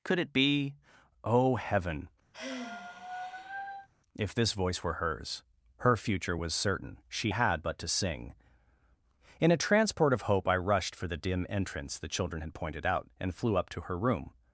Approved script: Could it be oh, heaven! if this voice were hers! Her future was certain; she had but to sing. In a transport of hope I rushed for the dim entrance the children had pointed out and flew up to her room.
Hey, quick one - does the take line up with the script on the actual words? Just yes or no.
yes